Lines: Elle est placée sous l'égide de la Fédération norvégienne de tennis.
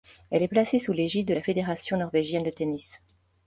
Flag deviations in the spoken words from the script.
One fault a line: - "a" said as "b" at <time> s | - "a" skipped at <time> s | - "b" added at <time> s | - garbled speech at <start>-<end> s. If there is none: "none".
none